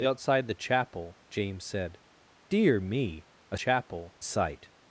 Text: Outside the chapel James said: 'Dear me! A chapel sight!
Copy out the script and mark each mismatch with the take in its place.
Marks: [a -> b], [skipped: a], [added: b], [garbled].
Outside the chapel James said: 'Dear me! A chapel sight!